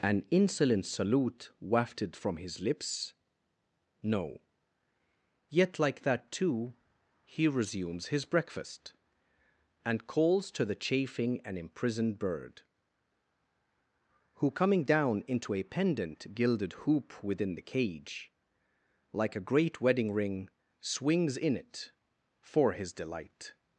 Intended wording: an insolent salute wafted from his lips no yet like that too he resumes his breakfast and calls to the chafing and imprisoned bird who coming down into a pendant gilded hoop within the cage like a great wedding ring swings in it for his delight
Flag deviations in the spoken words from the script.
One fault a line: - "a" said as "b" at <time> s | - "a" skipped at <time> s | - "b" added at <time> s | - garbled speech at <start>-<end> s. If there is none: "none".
none